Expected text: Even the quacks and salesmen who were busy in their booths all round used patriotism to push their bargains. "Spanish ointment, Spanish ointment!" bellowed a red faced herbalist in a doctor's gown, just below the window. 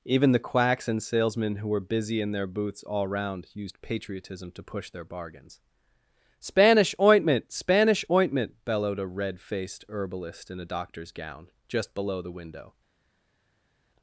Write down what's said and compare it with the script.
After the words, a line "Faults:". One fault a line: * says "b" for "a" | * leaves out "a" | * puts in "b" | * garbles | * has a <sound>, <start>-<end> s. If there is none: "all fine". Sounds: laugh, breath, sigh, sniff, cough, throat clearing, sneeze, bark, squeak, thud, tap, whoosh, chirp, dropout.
Even the quacks and salesmen who were busy in their booths all round used patriotism to push their bargains. "Spanish ointment, Spanish ointment!" bellowed a red faced herbalist in a doctor's gown, just below the window.
Faults:
all fine